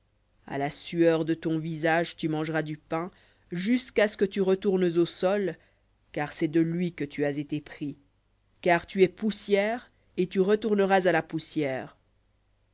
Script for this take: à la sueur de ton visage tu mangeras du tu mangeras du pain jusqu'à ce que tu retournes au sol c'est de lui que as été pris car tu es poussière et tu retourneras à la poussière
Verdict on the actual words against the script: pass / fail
fail